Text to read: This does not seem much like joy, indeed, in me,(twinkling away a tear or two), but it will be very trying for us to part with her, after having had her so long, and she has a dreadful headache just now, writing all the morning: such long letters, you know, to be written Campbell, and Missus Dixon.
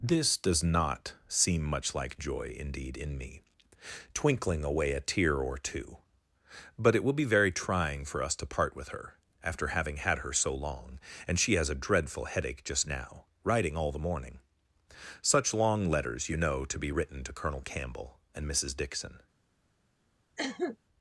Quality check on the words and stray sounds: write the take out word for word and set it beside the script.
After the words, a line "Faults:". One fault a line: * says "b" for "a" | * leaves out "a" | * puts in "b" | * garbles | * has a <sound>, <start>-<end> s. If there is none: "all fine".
This does not seem much like joy, indeed, in me,(twinkling away a tear or two), but it will be very trying for us to part with her, after having had her so long, and she has a dreadful headache just now, writing all the morning: such long letters, you know, to be written to Colonel Campbell, and Missus Dixon.
Faults:
* puts in "to Colonel"
* has a cough, 20.4-20.8 s